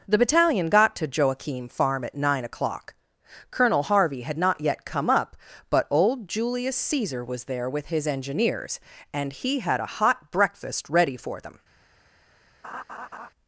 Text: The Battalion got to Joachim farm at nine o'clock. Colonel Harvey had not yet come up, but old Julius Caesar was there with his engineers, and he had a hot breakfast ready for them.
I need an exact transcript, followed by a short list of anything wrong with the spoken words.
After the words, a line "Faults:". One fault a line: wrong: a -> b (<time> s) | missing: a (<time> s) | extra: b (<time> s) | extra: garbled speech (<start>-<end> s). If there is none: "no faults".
The Battalion got to Joachim farm at nine o'clock. Colonel Harvey had not yet come up, but old Julius Caesar was there with his engineers, and he had a hot breakfast ready for them.
Faults:
no faults